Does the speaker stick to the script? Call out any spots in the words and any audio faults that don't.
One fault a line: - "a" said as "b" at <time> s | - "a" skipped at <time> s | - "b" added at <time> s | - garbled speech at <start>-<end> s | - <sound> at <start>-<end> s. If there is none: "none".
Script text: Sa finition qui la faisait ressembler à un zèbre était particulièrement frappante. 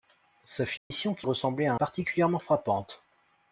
- dropout at 0.8-0.9 s
- "la faisait" skipped at 1.3 s
- "un zèbre était" skipped at 1.7 s